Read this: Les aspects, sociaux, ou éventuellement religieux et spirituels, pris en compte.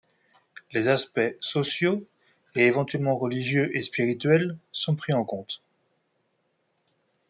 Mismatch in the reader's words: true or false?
true